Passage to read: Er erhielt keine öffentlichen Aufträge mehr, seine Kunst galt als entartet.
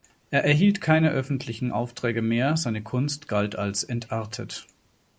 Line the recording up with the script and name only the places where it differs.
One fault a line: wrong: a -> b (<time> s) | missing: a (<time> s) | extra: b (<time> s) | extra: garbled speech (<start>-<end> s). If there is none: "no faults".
no faults